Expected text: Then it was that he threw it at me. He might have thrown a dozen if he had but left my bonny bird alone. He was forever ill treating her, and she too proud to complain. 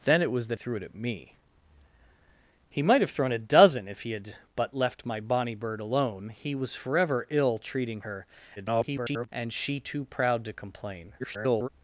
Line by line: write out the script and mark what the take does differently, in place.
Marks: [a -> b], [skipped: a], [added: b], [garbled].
Then it was that [skipped: he] threw it at me. He might have thrown a dozen if he had but left my bonny bird alone. He was forever ill treating her, [garbled] and she too proud to complain. [garbled]